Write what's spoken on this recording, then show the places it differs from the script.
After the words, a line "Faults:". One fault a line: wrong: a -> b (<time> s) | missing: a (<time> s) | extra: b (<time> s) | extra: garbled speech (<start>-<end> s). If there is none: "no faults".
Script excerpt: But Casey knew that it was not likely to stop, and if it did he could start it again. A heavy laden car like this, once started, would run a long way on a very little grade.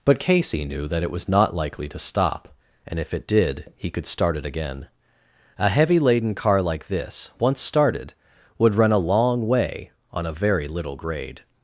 But Casey knew that it was not likely to stop, and if it did he could start it again. A heavy laden car like this, once started, would run a long way on a very little grade.
Faults:
no faults